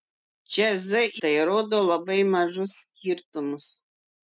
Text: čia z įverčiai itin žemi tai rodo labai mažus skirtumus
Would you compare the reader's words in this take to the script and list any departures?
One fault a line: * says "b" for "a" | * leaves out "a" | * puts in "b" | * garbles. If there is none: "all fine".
* leaves out "įverčiai itin žemi"